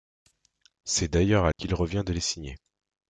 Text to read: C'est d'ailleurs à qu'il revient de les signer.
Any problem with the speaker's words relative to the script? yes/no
no